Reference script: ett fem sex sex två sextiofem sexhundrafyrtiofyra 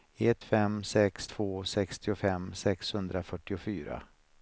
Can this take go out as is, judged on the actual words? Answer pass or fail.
fail